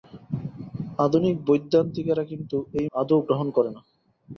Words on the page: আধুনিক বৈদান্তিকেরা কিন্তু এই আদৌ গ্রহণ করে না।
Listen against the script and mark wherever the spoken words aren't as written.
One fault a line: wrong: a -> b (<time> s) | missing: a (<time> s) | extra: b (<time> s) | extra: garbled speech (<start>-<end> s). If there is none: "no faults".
no faults